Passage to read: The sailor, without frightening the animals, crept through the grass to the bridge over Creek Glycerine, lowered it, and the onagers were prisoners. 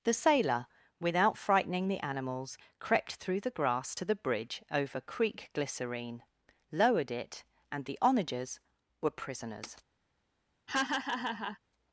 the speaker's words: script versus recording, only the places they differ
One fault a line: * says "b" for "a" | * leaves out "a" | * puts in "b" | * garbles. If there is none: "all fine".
all fine